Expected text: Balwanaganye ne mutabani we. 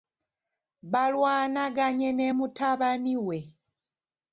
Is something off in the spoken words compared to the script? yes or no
no